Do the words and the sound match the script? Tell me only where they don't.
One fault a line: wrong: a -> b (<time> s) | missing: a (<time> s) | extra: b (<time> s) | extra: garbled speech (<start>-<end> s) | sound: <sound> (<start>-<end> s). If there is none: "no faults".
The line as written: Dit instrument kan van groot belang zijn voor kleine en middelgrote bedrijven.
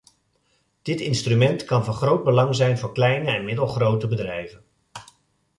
no faults